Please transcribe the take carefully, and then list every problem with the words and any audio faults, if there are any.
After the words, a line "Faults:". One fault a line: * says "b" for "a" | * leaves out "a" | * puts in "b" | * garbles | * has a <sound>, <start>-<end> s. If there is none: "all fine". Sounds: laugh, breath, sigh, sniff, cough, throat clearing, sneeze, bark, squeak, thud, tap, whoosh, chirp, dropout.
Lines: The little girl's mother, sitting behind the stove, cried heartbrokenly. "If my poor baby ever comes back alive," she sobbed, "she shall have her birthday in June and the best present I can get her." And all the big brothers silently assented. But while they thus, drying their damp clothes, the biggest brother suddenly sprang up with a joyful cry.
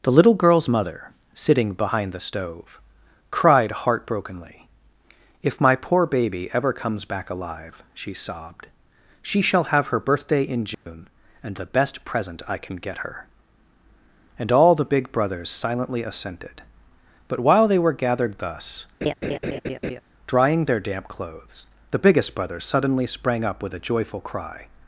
The little girl's mother, sitting behind the stove, cried heartbrokenly. "If my poor baby ever comes back alive," she sobbed, "she shall have her birthday in June and the best present I can get her." And all the big brothers silently assented. But while they were gathered thus, drying their damp clothes, the biggest brother suddenly sprang up with a joyful cry.
Faults:
* has a dropout, 10.7-10.9 s
* puts in "were gathered"
* has a laugh, 19.0-20.0 s